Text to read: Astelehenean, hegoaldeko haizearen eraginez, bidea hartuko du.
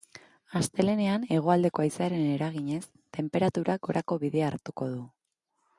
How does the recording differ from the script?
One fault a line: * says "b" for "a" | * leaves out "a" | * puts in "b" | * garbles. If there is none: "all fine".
* puts in "tenperaturak gorako"